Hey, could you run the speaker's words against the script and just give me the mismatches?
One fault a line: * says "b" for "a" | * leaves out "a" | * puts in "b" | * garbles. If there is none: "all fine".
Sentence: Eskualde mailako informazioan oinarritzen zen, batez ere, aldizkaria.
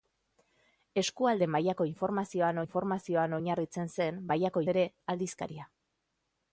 * puts in "informazioan"
* says "mailako" for "batez"